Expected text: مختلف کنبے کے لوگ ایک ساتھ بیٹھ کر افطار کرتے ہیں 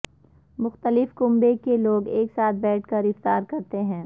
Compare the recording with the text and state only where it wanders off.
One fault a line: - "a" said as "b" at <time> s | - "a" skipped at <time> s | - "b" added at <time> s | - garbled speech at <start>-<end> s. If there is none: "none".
none